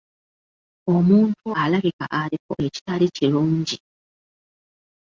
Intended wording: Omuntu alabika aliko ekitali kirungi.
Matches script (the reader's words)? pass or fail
pass